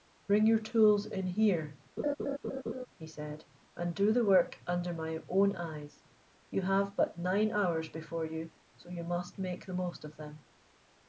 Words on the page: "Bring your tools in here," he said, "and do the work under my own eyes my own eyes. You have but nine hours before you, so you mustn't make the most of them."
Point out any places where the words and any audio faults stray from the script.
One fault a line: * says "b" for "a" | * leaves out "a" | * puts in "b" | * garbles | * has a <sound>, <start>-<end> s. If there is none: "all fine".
* has a laugh, 2.0-2.9 s
* leaves out "my own eyes"
* says "must" for "mustn't"